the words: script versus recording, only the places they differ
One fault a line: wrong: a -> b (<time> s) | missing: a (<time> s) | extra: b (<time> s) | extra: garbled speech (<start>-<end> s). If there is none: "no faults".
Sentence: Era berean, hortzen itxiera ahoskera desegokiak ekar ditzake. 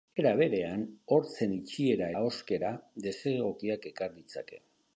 no faults